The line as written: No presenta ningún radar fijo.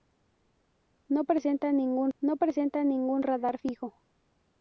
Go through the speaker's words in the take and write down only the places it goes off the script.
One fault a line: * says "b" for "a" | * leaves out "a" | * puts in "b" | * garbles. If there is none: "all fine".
* puts in "no presenta ningún"